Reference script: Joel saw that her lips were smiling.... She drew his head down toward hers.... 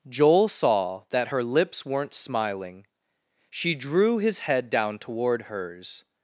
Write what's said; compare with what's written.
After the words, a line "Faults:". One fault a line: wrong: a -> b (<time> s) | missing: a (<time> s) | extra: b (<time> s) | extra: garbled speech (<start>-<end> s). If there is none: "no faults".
Joel saw that her lips weren't smiling.... She drew his head down toward hers....
Faults:
wrong: were -> weren't (1.8 s)